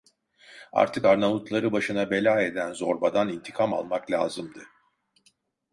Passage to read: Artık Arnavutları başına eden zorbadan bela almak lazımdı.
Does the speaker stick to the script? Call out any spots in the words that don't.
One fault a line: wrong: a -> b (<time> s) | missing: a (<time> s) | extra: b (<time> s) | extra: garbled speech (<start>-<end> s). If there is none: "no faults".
extra: bela (2.1 s)
wrong: bela -> intikam (3.3 s)